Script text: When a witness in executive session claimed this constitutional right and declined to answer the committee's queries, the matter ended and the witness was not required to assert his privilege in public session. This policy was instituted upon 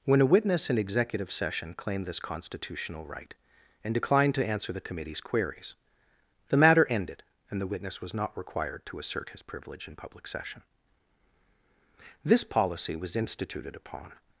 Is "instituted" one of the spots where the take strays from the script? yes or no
no